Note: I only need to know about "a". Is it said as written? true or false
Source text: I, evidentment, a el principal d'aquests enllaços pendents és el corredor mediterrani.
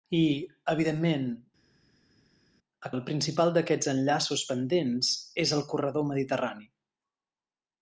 true